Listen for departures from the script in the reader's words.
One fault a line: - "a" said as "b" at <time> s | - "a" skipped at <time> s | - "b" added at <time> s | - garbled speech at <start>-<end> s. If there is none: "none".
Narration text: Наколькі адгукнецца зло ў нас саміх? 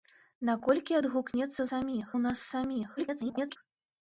- "зло" said as "саміх" at 1.7 s
- garbled speech at 3.0-3.6 s